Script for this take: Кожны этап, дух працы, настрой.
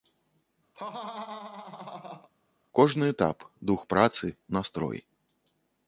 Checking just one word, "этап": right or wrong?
right